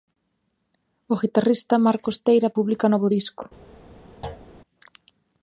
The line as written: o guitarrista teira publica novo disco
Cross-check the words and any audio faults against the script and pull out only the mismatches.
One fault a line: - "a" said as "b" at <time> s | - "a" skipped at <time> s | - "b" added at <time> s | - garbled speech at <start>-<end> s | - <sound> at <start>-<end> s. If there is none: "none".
- "marcos" added at 1.9 s
- thud at 4.2-4.5 s